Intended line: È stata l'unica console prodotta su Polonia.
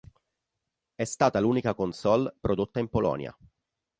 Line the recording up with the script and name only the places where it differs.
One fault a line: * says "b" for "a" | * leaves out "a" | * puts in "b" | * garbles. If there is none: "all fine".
* says "in" for "su"